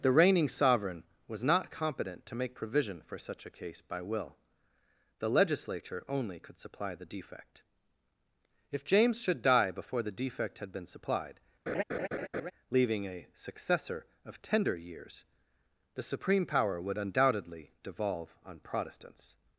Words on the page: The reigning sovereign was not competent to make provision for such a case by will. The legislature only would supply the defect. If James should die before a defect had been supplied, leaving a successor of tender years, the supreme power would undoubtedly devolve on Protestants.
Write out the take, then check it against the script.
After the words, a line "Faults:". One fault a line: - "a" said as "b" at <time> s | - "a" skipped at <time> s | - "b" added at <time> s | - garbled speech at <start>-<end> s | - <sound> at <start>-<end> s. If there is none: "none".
The reigning sovereign was not competent to make provision for such a case by will. The legislature only could supply the defect. If James should die before the defect had been supplied, leaving a successor of tender years, the supreme power would undoubtedly devolve on Protestants.
Faults:
- "would" said as "could" at 6.4 s
- "a" said as "the" at 10.0 s
- laugh at 11.7-12.5 s